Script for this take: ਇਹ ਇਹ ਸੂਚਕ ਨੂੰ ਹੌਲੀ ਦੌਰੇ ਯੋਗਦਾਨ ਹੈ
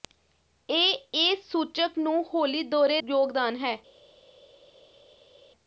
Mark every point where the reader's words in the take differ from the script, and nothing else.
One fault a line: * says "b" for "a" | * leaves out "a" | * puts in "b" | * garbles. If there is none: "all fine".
all fine